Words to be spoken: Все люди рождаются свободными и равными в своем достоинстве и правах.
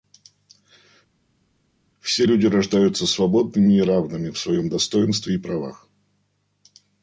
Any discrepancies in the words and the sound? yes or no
no